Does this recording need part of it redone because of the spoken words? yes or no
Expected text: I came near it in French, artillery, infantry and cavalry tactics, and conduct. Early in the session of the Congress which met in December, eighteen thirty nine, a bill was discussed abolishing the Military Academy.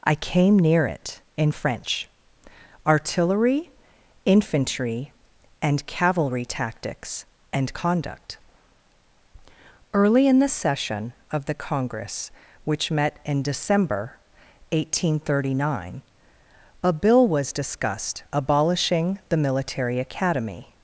no